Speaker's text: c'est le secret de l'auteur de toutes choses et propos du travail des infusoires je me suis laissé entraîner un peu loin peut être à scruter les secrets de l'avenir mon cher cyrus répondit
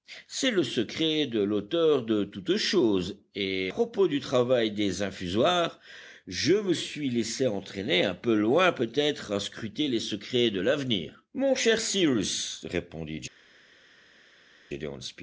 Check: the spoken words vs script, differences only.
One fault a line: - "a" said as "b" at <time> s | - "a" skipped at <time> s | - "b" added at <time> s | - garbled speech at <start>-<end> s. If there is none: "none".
none